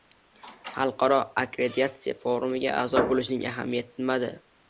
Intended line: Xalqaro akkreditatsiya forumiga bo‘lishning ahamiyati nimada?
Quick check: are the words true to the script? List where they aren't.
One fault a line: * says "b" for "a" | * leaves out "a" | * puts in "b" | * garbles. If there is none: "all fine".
* puts in "a'zo"